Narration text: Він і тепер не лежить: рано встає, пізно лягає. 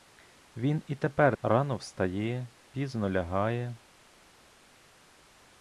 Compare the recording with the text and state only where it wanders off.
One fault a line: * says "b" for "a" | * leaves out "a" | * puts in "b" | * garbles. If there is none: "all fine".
* leaves out "не лежить"